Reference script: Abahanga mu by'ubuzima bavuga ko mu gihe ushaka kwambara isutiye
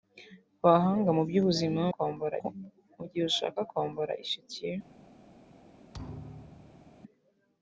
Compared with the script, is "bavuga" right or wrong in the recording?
wrong